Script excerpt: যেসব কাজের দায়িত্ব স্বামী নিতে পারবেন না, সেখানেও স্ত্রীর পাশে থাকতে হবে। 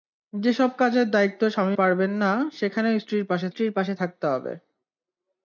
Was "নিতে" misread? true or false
true